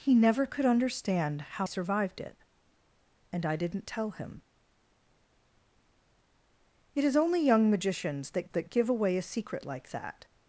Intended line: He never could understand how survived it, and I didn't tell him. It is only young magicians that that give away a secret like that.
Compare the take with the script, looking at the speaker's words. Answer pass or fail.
pass